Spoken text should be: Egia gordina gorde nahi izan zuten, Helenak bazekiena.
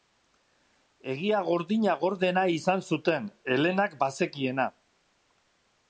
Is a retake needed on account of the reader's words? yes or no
no